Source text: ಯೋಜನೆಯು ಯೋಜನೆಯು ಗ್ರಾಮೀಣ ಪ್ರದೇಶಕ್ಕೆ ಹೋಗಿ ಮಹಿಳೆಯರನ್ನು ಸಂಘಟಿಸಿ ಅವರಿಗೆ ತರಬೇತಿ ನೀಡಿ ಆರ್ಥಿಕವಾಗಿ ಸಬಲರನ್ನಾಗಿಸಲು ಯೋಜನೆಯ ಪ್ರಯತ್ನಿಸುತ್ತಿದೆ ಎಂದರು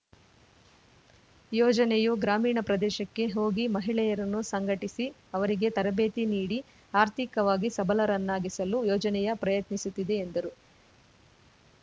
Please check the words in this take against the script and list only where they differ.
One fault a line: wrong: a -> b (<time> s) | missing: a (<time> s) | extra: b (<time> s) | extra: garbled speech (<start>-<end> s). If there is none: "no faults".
missing: ಯೋಜನೆಯು (2.1 s)